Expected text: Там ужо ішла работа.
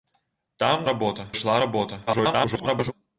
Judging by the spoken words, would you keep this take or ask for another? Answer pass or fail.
fail